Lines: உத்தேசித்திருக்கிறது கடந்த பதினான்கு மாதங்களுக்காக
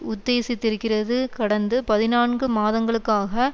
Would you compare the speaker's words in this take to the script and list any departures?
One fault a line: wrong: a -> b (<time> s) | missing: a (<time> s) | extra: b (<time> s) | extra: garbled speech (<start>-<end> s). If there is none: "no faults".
no faults